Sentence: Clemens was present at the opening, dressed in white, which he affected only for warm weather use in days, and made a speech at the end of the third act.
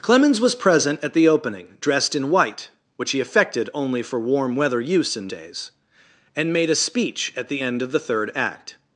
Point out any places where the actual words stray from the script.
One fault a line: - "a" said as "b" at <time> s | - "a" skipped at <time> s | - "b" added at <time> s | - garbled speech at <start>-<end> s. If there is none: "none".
none